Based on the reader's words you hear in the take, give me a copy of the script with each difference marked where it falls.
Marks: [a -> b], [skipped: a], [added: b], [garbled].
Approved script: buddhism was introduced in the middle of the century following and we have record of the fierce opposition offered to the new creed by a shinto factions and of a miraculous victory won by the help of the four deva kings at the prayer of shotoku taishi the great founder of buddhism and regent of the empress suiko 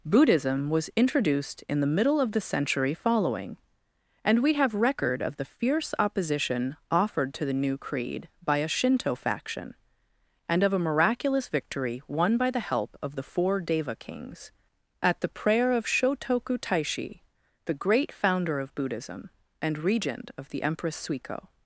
buddhism was introduced in the middle of the century following and we have record of the fierce opposition offered to the new creed by a shinto [factions -> faction] and of a miraculous victory won by the help of the four deva kings at the prayer of shotoku taishi the great founder of buddhism and regent of the empress suiko